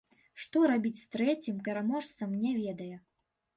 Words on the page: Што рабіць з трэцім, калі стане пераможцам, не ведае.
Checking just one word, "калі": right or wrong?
wrong